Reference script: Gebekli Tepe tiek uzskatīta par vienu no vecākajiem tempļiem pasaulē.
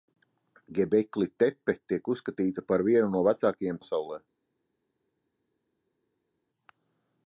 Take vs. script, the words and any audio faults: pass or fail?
fail